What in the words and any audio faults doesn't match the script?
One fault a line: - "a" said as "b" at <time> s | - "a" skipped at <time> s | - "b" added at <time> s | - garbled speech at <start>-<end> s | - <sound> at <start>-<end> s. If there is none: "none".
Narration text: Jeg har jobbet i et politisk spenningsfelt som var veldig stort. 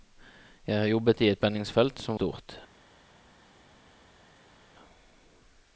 - "politisk" skipped at 1.4 s
- "var veldig" skipped at 2.2 s